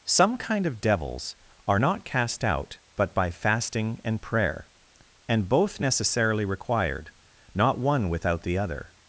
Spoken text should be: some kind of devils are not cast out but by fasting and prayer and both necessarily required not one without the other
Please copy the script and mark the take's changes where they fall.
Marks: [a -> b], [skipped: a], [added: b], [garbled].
some kind of devils are not cast out but by fasting and prayer and both necessarily required not one without the other